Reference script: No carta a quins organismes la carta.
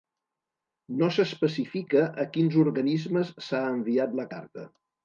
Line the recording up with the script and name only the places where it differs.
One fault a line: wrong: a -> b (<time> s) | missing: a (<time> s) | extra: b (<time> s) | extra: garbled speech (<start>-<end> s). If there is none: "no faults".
wrong: carta -> s'especifica (1.2 s)
extra: s'ha enviat (3.5 s)